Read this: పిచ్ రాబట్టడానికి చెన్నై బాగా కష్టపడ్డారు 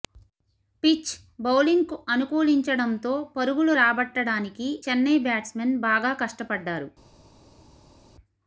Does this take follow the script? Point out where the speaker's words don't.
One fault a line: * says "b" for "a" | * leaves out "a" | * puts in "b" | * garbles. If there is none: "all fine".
* puts in "బౌలింగ్కు అనుకూలించడంతో పరుగులు"
* puts in "బ్యాట్స్మెన్"